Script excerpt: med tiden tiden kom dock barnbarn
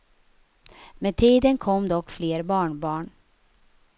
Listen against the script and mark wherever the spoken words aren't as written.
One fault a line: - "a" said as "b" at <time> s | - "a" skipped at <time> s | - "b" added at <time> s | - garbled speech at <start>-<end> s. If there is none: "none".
- "tiden" skipped at 1.6 s
- "fler" added at 2.1 s